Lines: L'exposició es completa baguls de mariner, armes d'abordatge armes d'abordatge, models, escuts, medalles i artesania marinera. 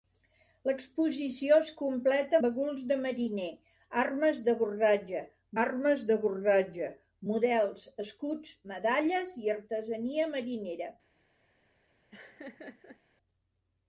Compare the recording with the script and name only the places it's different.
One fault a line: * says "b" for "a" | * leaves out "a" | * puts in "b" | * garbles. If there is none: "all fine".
all fine